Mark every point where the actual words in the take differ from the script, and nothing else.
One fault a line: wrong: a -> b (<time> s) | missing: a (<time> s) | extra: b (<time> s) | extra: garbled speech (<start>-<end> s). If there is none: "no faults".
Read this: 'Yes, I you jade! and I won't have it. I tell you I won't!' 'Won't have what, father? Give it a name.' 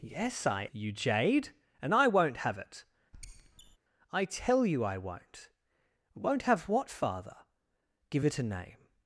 no faults